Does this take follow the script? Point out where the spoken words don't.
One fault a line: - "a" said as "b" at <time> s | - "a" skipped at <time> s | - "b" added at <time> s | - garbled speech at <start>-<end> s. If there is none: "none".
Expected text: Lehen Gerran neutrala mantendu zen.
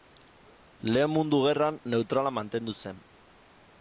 - "Mundu" added at 1.1 s